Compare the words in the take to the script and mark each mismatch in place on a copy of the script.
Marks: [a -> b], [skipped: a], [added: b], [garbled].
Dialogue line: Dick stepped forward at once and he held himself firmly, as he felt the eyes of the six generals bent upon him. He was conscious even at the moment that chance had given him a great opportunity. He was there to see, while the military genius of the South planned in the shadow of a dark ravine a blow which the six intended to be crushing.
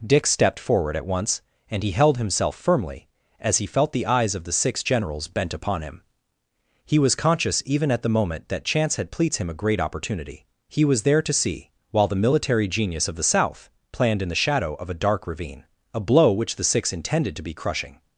Dick stepped forward at once and he held himself firmly, as he felt the eyes of the six generals bent upon him. He was conscious even at the moment that chance had [given -> pleats] him a great opportunity. He was there to see, while the military genius of the South planned in the shadow of a dark ravine a blow which the six intended to be crushing.